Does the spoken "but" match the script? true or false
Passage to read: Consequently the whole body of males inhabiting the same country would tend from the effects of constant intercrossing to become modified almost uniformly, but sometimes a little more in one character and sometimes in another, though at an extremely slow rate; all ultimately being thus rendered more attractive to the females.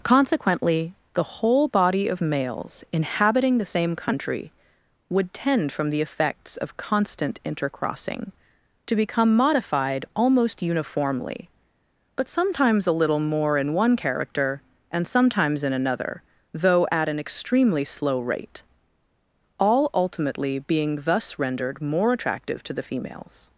true